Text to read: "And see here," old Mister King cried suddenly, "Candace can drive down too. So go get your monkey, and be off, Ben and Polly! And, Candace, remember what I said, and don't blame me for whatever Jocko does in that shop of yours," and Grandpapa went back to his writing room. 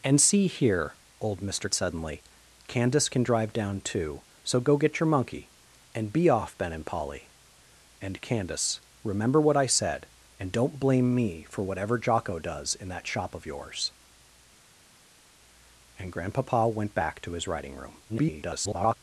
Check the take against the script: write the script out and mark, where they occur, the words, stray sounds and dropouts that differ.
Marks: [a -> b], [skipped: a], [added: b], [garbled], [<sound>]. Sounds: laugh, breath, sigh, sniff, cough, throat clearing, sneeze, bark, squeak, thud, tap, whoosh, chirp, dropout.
"And see here," old Mister [skipped: King cried] suddenly, "Candace can drive down too. So go get your monkey, and be off, Ben and Polly! And, Candace, remember what I said, and don't blame me for whatever Jocko does in that shop of yours," and Grandpapa went back to his writing room. [garbled]